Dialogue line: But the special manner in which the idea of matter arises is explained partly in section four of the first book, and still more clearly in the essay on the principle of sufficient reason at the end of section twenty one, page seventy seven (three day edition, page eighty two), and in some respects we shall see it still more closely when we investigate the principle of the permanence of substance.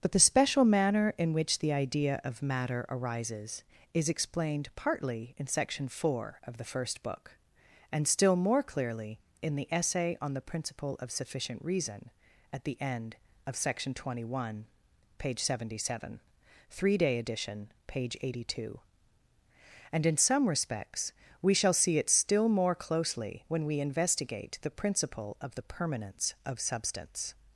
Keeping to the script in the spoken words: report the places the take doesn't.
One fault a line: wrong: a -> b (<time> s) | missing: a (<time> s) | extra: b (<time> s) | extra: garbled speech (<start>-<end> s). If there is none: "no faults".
no faults